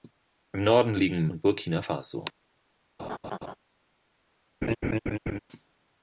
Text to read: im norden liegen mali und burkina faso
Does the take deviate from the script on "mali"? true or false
true